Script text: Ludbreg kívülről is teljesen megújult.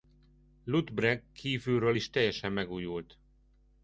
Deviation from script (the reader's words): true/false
false